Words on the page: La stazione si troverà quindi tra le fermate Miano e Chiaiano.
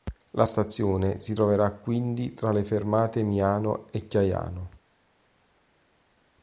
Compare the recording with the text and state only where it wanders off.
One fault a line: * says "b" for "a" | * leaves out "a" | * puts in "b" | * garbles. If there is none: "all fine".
all fine